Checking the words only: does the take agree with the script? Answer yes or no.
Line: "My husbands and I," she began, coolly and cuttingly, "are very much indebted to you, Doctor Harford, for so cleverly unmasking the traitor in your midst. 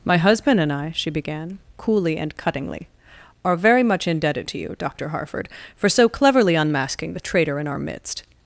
no